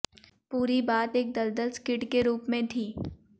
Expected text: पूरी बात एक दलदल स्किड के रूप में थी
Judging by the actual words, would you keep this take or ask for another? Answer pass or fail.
pass